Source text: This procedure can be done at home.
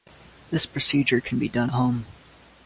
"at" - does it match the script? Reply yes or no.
no